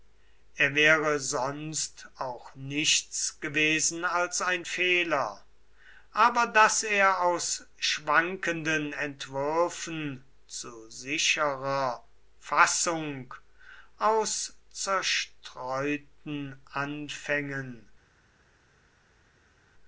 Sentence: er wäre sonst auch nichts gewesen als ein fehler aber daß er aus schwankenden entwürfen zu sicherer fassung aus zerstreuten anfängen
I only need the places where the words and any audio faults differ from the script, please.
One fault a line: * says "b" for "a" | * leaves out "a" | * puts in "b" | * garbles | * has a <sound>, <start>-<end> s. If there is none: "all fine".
all fine